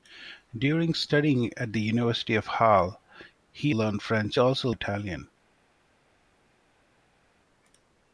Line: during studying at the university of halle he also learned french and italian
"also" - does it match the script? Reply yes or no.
no